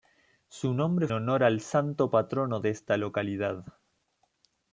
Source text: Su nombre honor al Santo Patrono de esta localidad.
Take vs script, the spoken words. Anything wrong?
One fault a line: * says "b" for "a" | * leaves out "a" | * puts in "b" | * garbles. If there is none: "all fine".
all fine